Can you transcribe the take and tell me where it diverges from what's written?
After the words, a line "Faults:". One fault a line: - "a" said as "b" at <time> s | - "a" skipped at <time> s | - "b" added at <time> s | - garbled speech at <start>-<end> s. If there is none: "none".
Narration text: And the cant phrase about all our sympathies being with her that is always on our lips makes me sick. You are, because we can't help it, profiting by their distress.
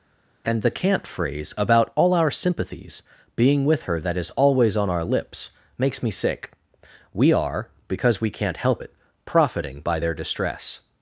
And the cant phrase about all our sympathies being with her that is always on our lips makes me sick. We are, because we can't help it, profiting by their distress.
Faults:
- "You" said as "We" at 7.1 s